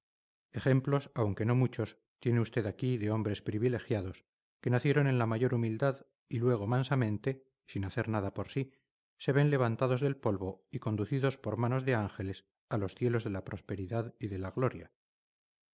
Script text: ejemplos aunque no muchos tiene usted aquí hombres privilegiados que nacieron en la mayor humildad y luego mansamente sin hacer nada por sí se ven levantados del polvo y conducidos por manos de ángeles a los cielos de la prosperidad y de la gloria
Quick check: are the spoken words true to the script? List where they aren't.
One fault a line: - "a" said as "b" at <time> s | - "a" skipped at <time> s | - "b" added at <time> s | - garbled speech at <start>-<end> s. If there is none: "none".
- "de" added at 3.0 s